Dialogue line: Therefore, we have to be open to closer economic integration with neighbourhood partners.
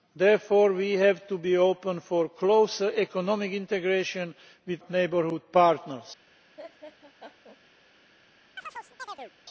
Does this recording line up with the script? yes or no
yes